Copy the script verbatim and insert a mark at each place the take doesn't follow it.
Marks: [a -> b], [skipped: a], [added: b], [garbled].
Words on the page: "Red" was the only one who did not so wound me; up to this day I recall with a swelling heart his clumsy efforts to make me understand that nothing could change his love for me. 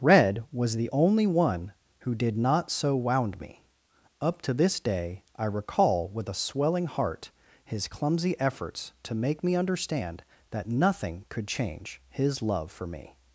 "Red" was the only one who did not so wound me; up to this day I recall with a swelling heart his clumsy efforts to make me understand that nothing could change his love for me.